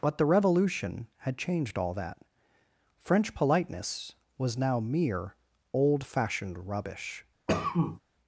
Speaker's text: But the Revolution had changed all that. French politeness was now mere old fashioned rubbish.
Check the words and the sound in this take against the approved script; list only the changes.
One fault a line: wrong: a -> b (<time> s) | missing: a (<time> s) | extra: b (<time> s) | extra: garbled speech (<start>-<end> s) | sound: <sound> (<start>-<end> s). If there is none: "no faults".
sound: cough (7.5-8.0 s)